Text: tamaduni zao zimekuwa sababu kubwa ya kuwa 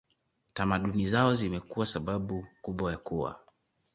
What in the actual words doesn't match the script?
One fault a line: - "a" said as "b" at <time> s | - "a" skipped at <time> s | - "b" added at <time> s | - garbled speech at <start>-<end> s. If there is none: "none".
none